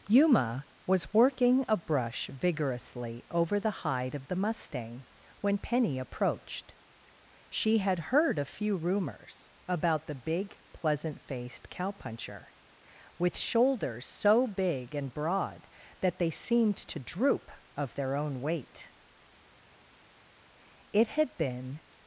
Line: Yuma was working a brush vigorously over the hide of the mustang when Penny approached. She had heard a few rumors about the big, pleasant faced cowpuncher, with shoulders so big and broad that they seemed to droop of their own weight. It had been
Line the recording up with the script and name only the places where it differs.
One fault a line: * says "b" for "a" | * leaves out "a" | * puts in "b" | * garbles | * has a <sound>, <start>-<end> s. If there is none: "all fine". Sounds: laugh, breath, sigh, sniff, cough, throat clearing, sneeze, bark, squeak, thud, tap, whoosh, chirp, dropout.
all fine